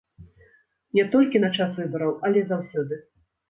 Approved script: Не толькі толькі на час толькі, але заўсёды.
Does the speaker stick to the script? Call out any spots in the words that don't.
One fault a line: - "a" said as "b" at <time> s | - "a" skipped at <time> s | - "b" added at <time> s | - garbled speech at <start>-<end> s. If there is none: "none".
- "толькі" skipped at 1.4 s
- "толькі" said as "выбараў" at 1.8 s